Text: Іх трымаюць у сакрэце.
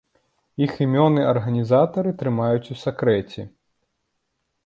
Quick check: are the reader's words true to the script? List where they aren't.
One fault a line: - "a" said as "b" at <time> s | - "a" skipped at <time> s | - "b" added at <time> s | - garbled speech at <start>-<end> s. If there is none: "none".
- "імёны арганізатары" added at 0.8 s